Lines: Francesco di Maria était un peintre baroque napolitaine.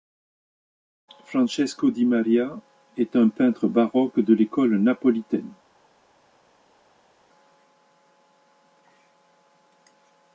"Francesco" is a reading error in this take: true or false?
false